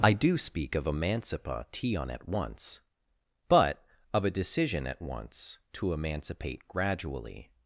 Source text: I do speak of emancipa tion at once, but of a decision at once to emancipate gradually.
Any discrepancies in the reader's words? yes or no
no